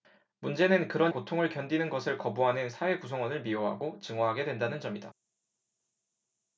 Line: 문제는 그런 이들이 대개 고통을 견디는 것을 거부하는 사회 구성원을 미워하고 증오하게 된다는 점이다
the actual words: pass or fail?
fail